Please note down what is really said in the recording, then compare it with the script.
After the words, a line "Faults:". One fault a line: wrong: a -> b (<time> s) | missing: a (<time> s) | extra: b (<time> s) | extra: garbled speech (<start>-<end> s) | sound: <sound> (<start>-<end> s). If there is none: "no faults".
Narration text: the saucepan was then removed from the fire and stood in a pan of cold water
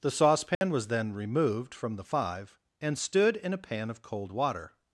the saucepan was then removed from the five and stood in a pan of cold water
Faults:
sound: dropout (0.6-0.6 s)
wrong: fire -> five (2.0 s)